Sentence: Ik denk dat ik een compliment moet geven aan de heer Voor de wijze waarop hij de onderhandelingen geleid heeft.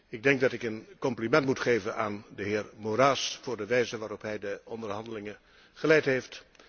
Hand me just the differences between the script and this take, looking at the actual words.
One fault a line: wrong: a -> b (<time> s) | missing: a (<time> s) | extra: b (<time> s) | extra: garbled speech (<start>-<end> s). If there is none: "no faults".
extra: Moraes (2.8 s)